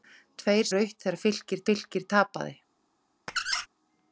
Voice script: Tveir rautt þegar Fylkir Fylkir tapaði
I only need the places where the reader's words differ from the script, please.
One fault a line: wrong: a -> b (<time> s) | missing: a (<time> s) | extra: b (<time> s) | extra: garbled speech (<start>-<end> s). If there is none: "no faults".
no faults